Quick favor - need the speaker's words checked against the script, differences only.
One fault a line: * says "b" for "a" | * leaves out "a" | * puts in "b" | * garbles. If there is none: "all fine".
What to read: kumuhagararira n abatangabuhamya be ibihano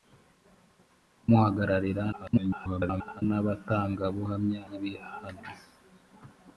* garbles
* leaves out "be"